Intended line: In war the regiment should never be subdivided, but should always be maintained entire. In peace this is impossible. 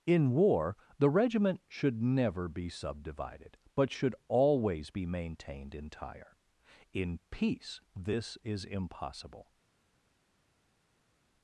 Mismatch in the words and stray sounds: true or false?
false